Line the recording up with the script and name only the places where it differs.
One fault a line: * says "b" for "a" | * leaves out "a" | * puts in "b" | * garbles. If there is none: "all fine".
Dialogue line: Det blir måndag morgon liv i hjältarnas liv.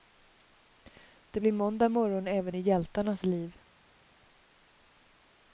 * says "även" for "liv"